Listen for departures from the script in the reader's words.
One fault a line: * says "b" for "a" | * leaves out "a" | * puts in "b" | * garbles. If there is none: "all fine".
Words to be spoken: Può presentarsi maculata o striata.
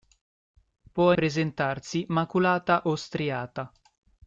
all fine